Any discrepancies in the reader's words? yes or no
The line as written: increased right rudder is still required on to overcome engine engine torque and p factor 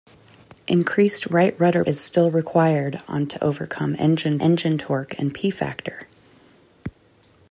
no